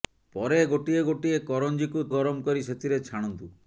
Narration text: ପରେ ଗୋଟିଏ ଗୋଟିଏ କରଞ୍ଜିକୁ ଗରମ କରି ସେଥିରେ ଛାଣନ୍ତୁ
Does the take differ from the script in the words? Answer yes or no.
no